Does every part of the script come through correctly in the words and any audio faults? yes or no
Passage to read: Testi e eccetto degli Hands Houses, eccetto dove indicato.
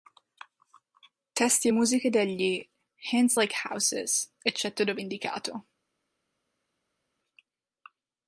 no